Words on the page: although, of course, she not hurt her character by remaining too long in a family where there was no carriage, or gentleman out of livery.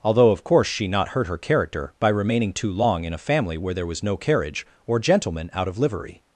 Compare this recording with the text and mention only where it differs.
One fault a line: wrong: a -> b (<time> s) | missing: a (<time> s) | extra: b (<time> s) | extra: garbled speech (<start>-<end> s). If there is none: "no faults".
no faults